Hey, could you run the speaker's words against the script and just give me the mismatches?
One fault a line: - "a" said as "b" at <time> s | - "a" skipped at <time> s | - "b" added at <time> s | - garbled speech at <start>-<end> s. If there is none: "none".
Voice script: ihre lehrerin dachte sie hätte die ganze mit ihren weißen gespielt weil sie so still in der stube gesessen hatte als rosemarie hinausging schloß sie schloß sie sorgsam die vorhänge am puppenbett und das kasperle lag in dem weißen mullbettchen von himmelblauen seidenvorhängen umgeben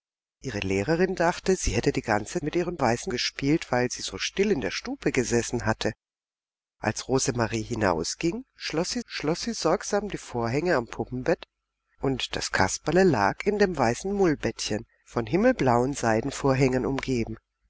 none